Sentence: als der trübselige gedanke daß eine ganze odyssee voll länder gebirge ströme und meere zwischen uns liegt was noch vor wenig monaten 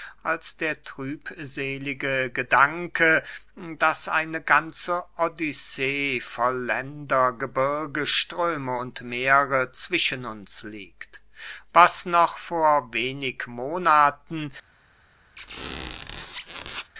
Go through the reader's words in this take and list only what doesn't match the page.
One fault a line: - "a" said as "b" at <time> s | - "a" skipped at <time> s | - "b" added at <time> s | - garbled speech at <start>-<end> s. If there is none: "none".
none